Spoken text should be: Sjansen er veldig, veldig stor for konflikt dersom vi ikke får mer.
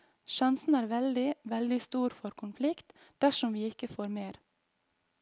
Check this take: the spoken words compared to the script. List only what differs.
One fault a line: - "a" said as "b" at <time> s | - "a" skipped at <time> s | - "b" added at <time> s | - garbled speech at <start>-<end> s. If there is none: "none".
none